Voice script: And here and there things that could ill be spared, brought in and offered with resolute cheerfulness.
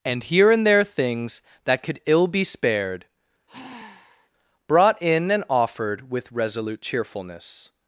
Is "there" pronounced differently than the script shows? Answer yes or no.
no